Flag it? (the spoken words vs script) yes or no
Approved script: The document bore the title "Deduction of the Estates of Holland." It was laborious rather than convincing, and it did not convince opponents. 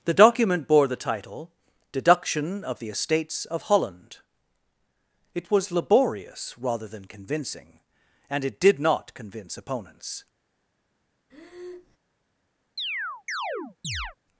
no